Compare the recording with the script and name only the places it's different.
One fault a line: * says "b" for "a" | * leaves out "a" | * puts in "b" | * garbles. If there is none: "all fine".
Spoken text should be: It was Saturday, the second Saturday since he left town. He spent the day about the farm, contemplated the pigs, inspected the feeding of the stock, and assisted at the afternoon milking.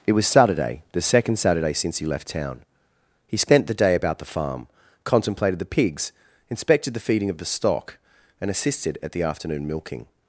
all fine